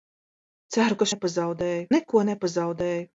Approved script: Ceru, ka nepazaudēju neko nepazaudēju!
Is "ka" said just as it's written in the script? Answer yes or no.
yes